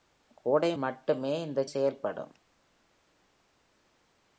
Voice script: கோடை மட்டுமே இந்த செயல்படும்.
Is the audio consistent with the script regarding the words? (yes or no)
yes